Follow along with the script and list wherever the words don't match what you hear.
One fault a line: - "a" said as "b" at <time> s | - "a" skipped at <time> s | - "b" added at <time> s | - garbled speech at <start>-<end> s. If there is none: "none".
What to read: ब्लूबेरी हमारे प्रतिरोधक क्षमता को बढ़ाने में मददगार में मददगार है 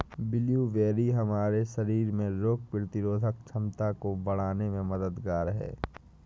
- "शरीर में रोग" added at 1.7 s
- "में मददगार" skipped at 5.5 s